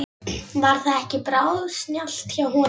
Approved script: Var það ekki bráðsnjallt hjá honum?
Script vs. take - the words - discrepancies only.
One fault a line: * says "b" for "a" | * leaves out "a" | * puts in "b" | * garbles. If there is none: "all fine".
all fine